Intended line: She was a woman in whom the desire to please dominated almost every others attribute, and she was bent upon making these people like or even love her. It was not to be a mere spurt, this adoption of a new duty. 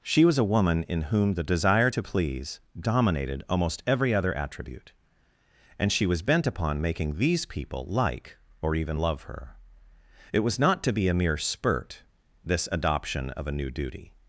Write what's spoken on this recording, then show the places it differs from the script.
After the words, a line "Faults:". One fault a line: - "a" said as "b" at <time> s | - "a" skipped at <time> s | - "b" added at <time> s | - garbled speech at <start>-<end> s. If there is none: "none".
She was a woman in whom the desire to please dominated almost every other attribute, and she was bent upon making these people like or even love her. It was not to be a mere spurt, this adoption of a new duty.
Faults:
- "others" said as "other" at 4.1 s